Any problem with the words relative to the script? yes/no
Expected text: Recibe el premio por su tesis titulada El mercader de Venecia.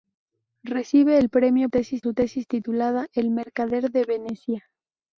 yes